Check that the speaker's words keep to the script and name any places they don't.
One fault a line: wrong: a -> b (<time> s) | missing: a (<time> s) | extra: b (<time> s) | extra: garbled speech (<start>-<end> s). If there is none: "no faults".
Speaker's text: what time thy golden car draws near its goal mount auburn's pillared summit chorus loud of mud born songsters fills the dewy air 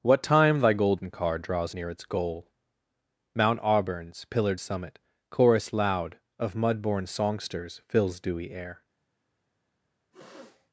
missing: the (8.2 s)